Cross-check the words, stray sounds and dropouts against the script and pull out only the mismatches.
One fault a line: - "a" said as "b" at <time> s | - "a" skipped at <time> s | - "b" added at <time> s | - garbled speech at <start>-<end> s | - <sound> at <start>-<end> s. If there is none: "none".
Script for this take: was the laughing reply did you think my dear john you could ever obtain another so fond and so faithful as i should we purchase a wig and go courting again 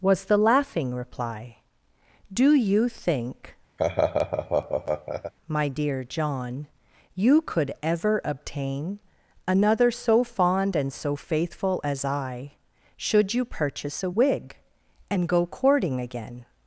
- "did" said as "do" at 2.3 s
- laugh at 3.8-5.3 s
- "we" said as "you" at 13.3 s